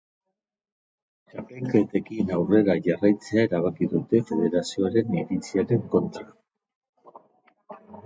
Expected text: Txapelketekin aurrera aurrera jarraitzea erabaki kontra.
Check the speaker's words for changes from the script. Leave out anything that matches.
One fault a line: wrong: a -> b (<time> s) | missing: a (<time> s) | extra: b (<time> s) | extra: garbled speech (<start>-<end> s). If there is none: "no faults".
missing: aurrera (2.8 s)
extra: dute federazioaren iritziaren (4.0 s)